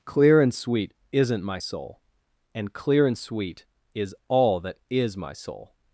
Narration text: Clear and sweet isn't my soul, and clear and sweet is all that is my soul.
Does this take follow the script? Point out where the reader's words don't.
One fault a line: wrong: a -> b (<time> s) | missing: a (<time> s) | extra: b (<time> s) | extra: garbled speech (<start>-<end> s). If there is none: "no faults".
no faults